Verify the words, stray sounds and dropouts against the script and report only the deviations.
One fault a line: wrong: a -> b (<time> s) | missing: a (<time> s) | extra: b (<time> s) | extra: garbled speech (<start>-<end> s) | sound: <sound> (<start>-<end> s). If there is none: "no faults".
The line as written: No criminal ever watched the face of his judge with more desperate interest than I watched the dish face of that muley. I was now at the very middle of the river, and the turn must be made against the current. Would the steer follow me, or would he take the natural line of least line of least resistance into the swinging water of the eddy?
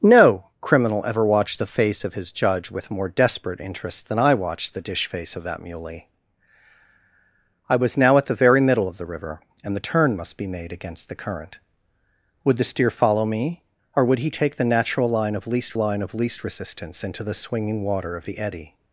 no faults